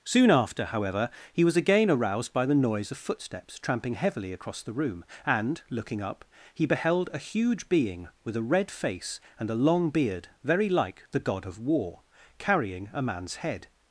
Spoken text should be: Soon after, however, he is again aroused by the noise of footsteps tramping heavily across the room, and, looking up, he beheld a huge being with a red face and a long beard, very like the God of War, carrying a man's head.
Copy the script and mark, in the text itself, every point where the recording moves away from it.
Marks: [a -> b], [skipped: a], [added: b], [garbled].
Soon after, however, he [is -> was] again aroused by the noise of footsteps tramping heavily across the room, and, looking up, he beheld a huge being with a red face and a long beard, very like the God of War, carrying a man's head.